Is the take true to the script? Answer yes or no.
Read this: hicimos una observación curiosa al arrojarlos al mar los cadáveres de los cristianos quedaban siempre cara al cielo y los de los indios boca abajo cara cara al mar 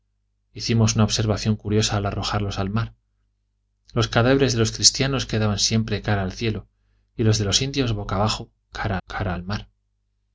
yes